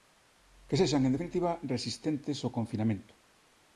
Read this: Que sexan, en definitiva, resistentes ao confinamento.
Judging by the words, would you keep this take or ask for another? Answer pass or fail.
pass